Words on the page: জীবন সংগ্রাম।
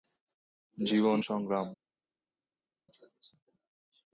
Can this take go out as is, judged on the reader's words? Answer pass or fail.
pass